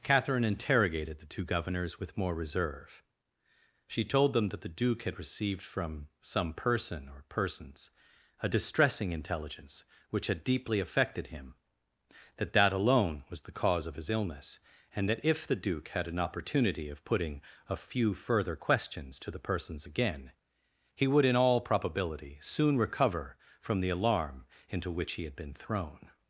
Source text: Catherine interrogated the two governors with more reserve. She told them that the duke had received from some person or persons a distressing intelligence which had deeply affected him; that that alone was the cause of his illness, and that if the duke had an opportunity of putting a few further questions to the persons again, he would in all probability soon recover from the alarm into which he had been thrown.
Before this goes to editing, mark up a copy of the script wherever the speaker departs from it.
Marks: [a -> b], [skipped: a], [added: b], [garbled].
Catherine interrogated the two governors with more reserve. She told them that the duke had received from some person or persons a distressing intelligence which had deeply affected him; that that alone was the cause of his illness, and that if the duke had an opportunity of putting a few further questions to the persons again, he would in all probability soon recover from the alarm into which he had been thrown.